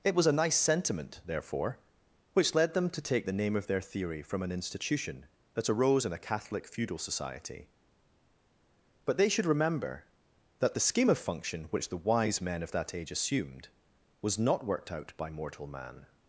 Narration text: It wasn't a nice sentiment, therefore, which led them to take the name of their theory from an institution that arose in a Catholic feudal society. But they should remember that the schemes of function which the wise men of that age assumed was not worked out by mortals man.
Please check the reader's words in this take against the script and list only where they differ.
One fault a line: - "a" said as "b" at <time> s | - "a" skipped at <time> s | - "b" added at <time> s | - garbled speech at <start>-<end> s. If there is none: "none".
- "wasn't" said as "was" at 0.1 s
- "schemes" said as "scheme" at 10.9 s
- "mortals" said as "mortal" at 15.3 s